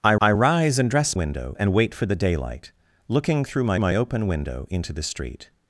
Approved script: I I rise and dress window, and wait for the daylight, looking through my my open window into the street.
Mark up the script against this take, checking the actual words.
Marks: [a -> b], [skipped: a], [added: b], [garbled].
I I rise and dress window, and wait for the daylight, looking through my my open window into the street.